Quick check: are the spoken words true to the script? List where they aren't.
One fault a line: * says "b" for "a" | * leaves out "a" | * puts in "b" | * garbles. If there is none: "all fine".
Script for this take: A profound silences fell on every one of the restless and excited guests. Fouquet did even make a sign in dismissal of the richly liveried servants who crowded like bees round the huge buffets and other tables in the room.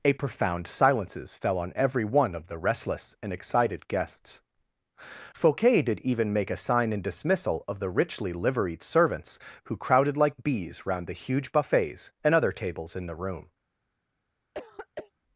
all fine